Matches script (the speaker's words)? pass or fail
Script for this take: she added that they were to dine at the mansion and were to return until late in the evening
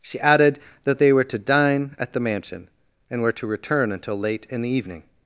pass